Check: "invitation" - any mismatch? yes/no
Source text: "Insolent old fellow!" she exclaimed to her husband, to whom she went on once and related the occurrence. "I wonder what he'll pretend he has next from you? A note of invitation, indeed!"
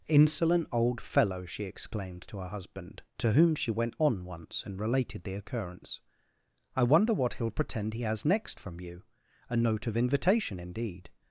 no